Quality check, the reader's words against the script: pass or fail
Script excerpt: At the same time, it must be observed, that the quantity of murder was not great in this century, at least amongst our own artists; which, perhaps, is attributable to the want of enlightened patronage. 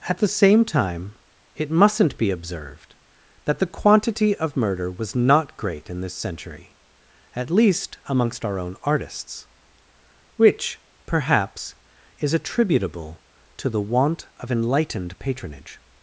fail